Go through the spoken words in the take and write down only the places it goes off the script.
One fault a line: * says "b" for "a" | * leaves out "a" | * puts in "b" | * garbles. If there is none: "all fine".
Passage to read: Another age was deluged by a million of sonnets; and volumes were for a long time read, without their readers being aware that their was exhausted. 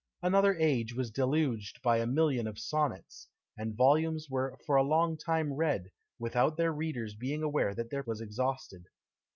all fine